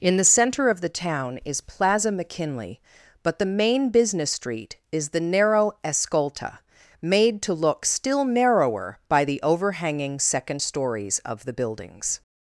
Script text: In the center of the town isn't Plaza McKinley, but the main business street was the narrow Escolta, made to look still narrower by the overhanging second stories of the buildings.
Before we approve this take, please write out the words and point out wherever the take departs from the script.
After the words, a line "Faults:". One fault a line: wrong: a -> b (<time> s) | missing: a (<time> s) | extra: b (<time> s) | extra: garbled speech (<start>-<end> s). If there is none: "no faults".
In the center of the town is Plaza McKinley, but the main business street is the narrow Escolta, made to look still narrower by the overhanging second stories of the buildings.
Faults:
wrong: isn't -> is (1.4 s)
wrong: was -> is (4.9 s)